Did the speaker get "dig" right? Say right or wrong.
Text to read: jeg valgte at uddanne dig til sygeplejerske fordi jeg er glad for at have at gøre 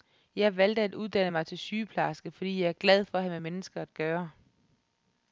wrong